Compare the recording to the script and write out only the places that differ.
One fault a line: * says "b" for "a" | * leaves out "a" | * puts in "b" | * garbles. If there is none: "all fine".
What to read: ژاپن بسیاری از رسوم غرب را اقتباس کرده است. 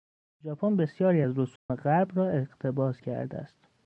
all fine